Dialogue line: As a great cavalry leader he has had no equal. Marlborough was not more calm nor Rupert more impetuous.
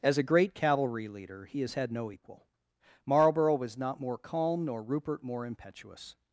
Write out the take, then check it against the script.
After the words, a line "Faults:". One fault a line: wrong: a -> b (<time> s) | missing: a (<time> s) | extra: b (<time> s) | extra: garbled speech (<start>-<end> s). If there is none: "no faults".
As a great cavalry leader he has had no equal. Marlborough was not more calm nor Rupert more impetuous.
Faults:
no faults